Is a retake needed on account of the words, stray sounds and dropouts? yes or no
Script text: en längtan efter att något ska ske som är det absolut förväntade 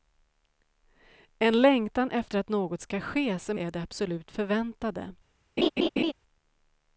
yes